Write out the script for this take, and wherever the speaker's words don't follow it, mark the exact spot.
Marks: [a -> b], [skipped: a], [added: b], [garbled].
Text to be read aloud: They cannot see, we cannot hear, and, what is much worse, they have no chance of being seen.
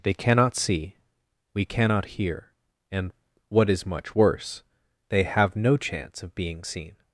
They cannot see, we cannot hear, and, what is much worse, they have no chance of being seen.